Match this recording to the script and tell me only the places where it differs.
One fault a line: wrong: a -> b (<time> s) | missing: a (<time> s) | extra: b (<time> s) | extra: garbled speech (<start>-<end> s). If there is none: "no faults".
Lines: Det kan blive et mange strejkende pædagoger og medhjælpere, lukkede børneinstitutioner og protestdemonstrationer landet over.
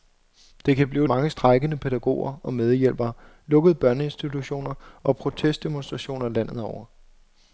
no faults